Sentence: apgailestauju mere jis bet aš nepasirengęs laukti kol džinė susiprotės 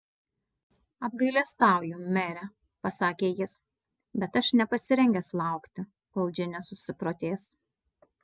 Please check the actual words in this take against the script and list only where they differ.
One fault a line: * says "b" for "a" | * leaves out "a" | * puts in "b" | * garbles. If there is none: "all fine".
* puts in "pasakė"